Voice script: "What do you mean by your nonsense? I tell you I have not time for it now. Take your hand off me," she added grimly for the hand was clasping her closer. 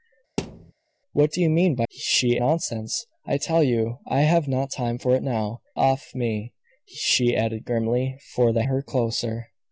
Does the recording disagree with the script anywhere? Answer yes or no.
yes